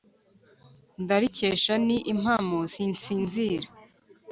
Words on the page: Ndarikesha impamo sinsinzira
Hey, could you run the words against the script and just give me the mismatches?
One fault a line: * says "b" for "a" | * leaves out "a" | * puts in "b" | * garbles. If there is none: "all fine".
* puts in "ni"